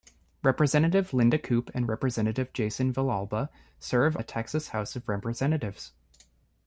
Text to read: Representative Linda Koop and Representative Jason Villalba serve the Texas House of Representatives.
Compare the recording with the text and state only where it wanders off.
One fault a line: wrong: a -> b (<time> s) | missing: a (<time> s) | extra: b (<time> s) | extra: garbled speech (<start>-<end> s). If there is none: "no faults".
no faults